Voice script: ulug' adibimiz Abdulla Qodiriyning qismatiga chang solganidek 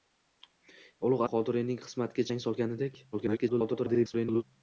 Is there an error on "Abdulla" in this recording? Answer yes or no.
yes